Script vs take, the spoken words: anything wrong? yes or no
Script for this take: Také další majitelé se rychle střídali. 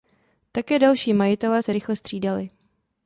no